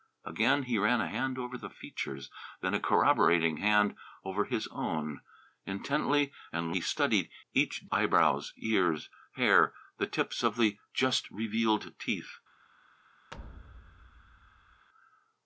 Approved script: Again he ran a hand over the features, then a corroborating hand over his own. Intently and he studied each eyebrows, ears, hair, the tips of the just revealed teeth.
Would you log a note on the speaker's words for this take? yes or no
no